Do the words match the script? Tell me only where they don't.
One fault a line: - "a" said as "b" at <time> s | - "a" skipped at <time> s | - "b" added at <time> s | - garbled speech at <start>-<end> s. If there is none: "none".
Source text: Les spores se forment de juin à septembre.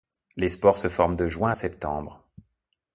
none